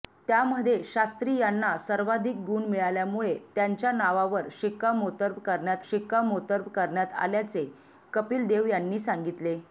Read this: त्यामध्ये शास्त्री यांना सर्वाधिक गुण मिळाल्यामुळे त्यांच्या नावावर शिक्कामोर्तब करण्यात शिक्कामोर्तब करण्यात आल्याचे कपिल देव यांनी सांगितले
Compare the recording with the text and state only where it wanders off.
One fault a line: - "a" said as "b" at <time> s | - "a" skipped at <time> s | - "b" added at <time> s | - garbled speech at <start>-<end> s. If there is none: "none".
none